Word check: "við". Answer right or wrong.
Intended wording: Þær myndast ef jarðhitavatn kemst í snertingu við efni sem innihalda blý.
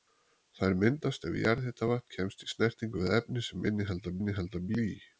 right